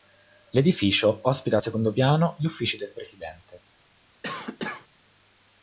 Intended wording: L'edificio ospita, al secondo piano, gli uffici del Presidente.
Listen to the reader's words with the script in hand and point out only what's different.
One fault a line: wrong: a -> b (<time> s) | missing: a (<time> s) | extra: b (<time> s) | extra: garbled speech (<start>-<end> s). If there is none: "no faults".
no faults